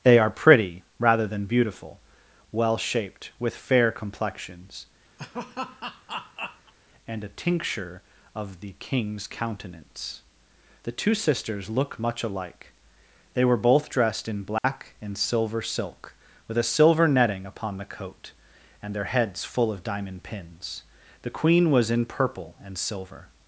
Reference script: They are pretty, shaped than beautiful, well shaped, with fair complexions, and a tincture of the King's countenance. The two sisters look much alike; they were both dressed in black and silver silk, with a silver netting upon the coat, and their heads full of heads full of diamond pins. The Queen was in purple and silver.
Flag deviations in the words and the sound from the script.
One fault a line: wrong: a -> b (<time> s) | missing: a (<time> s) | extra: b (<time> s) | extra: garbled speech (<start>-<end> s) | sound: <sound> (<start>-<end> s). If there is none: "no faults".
wrong: shaped -> rather (1.0 s)
sound: laugh (5.2-6.7 s)
sound: dropout (14.6-14.6 s)
missing: heads full of (19.8 s)